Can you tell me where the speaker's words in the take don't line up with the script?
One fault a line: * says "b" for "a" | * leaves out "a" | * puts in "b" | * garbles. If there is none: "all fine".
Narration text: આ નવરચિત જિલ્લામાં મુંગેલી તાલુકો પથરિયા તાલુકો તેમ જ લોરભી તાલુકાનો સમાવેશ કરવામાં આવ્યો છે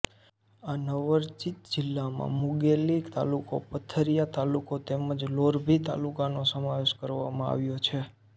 all fine